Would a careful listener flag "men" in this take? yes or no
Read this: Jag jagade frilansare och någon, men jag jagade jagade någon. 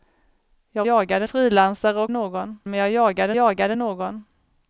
no